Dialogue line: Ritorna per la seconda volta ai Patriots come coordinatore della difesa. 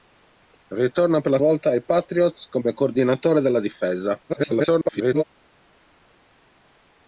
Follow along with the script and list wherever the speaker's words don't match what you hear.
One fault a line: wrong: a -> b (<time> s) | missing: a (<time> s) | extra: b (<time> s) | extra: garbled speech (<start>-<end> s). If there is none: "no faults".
missing: seconda (1.4 s)
extra: garbled speech (4.3-5.2 s)